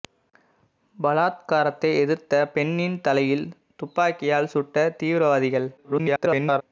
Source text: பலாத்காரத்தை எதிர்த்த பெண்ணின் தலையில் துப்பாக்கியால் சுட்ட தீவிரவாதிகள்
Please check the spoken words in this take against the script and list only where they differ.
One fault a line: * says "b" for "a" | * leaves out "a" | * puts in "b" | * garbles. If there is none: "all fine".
* garbles